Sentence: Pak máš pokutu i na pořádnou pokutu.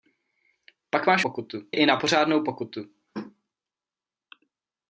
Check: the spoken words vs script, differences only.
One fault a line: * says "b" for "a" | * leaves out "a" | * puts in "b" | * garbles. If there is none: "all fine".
all fine